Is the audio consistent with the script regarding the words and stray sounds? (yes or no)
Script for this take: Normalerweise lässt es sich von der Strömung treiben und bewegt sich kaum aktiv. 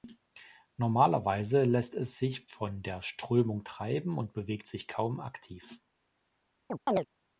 no